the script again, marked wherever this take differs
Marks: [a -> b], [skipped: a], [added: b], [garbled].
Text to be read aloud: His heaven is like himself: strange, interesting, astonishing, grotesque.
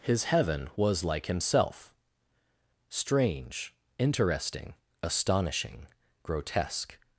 His heaven [is -> was] like himself: strange, interesting, astonishing, grotesque.